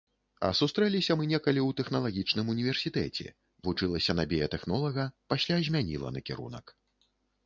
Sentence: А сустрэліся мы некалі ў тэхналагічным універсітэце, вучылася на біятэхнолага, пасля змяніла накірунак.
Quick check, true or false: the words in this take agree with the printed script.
true